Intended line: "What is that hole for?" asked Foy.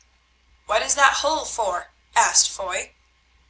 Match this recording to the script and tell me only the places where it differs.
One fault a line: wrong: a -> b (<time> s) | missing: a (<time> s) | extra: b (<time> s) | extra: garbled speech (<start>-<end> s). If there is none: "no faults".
no faults